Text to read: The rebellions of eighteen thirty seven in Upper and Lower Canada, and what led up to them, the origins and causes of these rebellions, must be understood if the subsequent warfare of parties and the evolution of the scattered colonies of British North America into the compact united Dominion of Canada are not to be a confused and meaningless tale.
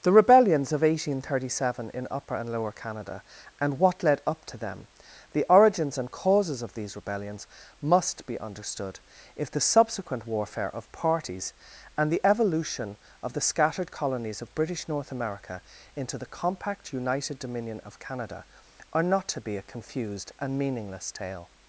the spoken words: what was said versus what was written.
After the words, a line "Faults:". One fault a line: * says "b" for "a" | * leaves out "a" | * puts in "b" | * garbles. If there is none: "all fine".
The rebellions of eighteen thirty seven in Upper and Lower Canada, and what led up to them, the origins and causes of these rebellions, must be understood if the subsequent warfare of parties and the evolution of the scattered colonies of British North America into the compact united Dominion of Canada are not to be a confused and meaningless tale.
Faults:
all fine